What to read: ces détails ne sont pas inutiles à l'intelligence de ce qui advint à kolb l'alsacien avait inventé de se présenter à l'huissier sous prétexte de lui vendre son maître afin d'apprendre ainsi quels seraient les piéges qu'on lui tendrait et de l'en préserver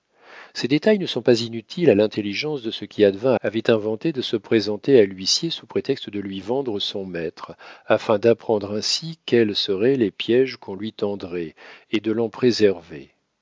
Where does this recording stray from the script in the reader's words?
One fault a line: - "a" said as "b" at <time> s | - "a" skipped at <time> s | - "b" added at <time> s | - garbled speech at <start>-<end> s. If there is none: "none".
- "à kolb l'alsacien" skipped at 3.4 s